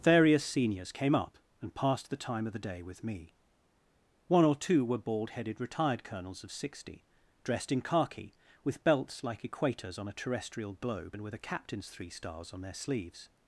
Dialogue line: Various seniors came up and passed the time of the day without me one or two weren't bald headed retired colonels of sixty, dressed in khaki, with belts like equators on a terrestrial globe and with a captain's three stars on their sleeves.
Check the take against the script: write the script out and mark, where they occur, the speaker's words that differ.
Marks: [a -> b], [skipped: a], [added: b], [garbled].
Various seniors came up and passed the time of the day [without -> with] me one or two [weren't -> were] bald headed retired colonels of sixty, dressed in khaki, with belts like equators on a terrestrial globe and with a captain's three stars on their sleeves.